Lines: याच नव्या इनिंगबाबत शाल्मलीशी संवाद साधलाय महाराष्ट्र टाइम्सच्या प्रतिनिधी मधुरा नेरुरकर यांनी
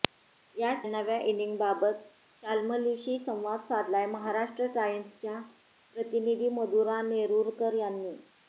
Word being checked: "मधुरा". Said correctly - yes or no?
yes